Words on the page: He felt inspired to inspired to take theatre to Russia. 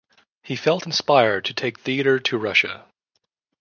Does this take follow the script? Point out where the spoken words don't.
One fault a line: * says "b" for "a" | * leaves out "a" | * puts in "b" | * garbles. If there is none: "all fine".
* leaves out "inspired to"